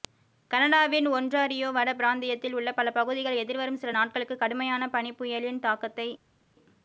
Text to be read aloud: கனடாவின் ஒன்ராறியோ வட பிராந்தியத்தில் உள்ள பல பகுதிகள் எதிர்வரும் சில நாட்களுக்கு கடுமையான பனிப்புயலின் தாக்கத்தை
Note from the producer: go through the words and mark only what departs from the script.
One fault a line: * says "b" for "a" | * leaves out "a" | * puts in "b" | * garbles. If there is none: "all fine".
all fine